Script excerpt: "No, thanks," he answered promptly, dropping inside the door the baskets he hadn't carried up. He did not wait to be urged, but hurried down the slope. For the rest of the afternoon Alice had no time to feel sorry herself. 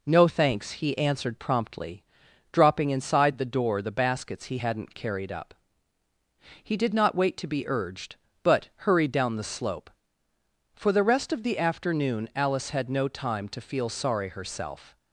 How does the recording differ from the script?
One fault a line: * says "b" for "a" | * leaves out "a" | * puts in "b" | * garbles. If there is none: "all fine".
all fine